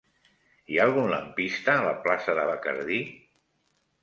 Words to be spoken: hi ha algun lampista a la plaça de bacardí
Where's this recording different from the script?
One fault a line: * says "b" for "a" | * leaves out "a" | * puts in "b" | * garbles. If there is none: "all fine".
all fine